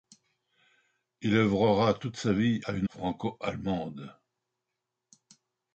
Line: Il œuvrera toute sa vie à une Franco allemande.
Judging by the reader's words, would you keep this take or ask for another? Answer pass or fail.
pass